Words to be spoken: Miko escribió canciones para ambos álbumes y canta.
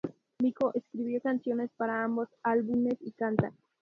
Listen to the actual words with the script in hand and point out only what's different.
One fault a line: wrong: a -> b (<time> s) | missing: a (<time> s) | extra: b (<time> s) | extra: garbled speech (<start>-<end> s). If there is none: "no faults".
no faults